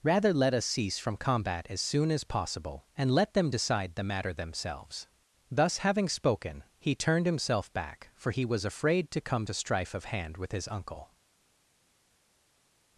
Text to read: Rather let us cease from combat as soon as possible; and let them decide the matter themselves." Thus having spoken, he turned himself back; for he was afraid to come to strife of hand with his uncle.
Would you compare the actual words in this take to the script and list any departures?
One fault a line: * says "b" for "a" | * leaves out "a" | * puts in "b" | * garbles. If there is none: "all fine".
all fine